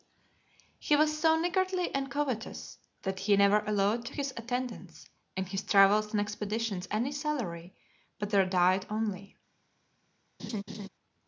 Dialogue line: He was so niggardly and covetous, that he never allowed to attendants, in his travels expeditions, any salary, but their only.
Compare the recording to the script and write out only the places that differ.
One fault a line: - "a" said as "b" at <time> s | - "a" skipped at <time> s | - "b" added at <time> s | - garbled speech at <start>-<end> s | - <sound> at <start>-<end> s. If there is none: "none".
- "his" added at 4.1 s
- "and" added at 6.1 s
- "diet" added at 8.5 s
- laugh at 10.4-10.9 s